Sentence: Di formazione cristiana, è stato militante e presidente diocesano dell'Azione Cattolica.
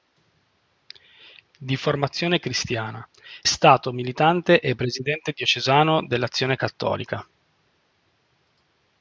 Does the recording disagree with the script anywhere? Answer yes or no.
yes